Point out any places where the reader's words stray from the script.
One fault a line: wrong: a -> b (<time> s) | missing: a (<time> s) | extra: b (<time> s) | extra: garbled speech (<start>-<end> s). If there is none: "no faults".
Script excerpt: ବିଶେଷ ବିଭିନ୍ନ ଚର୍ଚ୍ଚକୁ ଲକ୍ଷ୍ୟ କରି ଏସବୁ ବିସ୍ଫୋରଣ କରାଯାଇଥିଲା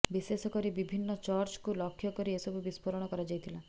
extra: କରି (0.5 s)